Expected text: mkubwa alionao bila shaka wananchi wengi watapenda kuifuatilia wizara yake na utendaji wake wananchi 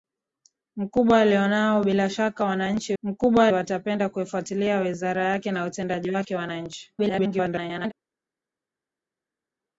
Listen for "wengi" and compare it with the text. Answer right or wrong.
wrong